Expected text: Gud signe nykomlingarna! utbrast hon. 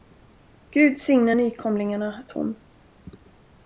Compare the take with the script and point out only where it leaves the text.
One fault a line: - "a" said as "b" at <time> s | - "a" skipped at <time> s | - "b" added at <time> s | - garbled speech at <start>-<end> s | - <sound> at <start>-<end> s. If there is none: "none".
- "utbrast" skipped at 2.2 s